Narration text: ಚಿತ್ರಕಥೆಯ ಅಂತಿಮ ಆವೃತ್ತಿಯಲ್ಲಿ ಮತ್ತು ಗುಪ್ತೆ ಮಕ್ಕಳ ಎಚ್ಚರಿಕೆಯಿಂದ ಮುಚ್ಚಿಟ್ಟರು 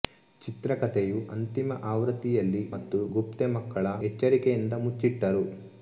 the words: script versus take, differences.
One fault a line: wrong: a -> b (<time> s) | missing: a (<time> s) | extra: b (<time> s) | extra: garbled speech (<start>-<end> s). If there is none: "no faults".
no faults